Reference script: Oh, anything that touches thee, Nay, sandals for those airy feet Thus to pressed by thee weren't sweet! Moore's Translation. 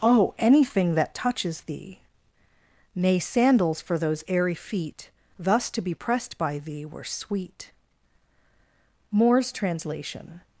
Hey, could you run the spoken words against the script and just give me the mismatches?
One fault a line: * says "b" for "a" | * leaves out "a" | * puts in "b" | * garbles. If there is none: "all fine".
* puts in "be"
* says "were" for "weren't"